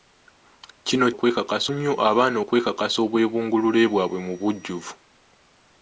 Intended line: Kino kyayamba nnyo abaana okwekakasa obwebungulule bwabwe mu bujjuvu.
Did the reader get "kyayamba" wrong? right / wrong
wrong